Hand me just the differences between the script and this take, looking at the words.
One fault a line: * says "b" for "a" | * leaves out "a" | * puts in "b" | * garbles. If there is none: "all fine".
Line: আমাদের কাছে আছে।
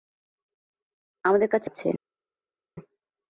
all fine